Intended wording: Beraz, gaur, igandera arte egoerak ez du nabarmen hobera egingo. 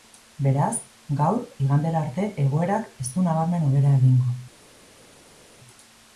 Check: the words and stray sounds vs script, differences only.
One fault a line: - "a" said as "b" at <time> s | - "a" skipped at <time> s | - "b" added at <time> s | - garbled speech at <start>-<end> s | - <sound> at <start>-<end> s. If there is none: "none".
none